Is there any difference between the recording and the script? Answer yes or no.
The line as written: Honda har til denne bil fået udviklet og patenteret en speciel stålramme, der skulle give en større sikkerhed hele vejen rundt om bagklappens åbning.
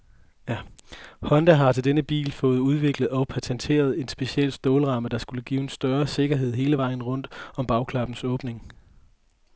no